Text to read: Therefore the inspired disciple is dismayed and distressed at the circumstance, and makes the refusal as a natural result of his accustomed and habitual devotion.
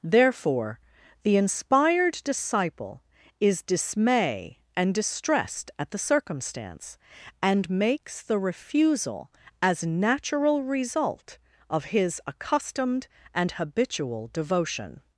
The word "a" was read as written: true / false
false